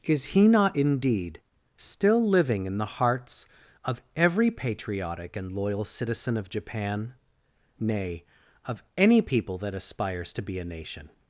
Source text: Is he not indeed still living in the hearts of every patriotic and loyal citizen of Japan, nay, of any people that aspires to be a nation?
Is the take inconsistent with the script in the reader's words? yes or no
no